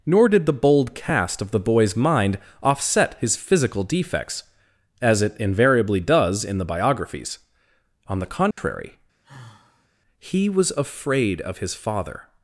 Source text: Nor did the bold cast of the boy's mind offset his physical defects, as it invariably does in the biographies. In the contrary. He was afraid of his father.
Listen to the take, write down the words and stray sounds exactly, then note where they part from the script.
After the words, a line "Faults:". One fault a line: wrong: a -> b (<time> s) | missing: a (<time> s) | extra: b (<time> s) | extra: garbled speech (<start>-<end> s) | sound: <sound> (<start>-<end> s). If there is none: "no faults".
Nor did the bold cast of the boy's mind offset his physical defects, as it invariably does in the biographies. On the contrary. He was afraid of his father.
Faults:
wrong: In -> On (8.1 s)
sound: dropout (8.5-8.6 s)
sound: sigh (9.2-9.9 s)